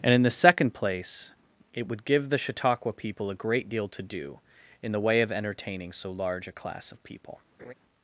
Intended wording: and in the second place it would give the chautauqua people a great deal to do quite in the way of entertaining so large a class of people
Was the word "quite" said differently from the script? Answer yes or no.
yes